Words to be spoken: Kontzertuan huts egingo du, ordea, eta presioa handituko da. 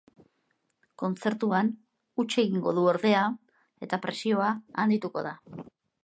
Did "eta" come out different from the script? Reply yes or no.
no